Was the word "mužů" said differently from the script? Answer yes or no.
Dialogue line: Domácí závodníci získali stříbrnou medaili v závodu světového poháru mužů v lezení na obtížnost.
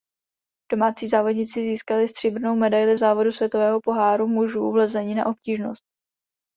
no